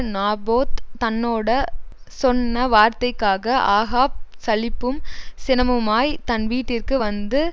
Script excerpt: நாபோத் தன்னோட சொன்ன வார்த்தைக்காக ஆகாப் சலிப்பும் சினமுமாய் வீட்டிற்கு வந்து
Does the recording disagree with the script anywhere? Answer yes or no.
yes